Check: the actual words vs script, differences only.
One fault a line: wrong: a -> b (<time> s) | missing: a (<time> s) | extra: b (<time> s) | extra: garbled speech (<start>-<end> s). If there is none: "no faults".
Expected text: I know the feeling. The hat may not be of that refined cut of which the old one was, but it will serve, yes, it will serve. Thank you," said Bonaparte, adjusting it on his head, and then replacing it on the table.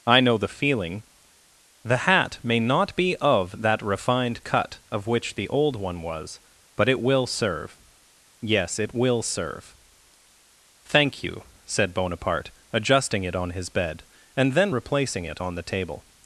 wrong: head -> bed (13.7 s)